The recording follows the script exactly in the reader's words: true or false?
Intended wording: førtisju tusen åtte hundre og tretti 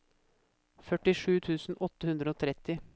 true